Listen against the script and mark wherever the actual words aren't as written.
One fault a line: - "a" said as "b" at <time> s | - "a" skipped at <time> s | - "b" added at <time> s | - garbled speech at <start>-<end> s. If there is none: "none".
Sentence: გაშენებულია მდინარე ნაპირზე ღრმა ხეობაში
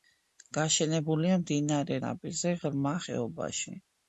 none